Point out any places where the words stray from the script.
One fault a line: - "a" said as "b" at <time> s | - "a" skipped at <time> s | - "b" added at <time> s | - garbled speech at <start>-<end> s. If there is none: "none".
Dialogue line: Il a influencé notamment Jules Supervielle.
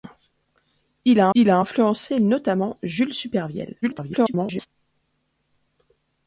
- "il a" added at 1.3 s
- garbled speech at 3.8-4.7 s